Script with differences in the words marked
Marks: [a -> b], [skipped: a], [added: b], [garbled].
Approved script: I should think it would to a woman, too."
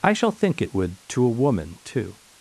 I [should -> shall] think it would to a woman, too."